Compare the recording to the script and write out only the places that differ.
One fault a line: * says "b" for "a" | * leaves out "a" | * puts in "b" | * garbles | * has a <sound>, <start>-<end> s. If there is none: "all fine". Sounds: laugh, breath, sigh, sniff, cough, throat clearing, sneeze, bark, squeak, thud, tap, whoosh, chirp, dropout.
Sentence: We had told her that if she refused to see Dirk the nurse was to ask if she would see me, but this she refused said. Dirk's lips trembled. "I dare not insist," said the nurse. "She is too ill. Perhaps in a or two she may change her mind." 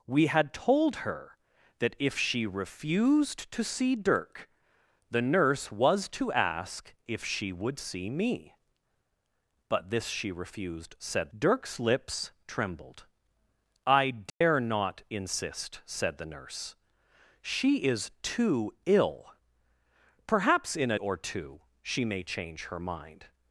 * has a dropout, 14.3-14.4 s